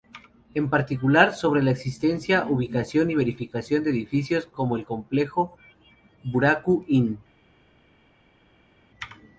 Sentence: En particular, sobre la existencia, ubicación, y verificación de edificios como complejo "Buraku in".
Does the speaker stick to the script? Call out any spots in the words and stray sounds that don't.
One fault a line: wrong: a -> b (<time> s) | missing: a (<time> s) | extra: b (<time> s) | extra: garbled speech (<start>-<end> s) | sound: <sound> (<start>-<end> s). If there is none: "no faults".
extra: el (4.8 s)